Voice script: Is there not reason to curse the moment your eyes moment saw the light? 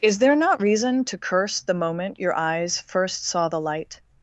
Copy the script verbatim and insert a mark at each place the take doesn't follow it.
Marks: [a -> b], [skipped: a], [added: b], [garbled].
Is there not reason to curse the moment your eyes [moment -> first] saw the light?